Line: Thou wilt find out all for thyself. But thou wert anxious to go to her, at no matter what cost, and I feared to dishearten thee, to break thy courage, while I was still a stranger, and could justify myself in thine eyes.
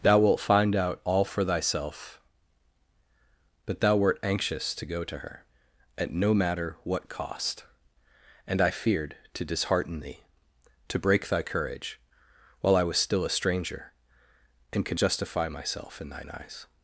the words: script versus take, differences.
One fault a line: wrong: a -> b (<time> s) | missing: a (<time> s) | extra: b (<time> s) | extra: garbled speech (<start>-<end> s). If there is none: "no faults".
no faults